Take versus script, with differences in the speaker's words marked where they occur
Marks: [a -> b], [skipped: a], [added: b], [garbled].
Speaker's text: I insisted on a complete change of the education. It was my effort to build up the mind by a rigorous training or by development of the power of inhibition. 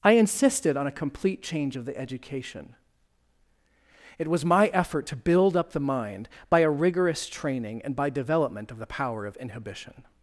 I insisted on a complete change of the education. It was my effort to build up the mind by a rigorous training [or -> and] by development of the power of inhibition.